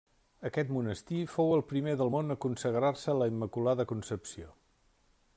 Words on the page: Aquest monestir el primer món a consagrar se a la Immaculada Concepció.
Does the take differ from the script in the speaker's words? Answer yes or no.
yes